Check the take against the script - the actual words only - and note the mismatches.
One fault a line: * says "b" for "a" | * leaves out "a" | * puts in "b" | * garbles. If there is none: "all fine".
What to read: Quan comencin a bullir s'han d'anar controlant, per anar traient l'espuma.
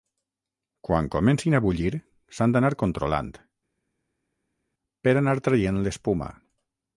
all fine